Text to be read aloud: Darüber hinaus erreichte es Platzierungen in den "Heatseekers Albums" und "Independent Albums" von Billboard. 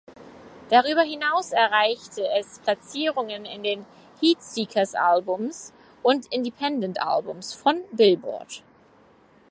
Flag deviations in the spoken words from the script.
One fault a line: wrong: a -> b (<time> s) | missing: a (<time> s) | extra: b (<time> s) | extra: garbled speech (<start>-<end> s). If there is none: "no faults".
no faults